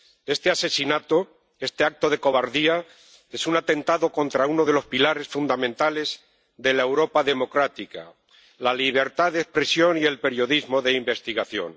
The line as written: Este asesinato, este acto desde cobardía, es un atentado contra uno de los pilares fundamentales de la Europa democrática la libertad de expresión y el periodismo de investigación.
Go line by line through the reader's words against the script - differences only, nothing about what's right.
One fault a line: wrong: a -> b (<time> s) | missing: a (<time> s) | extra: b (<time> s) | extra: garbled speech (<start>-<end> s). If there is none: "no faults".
wrong: desde -> de (2.1 s)